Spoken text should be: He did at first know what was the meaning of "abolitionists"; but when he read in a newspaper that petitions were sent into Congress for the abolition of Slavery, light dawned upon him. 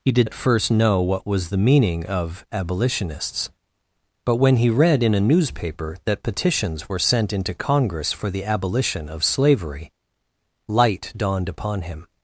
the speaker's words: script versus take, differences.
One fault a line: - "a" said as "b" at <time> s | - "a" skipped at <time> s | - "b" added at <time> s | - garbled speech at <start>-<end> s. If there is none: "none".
none